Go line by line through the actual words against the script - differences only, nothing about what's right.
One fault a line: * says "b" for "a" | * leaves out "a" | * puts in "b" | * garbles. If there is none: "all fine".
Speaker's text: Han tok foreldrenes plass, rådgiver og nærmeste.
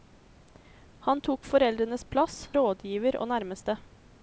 all fine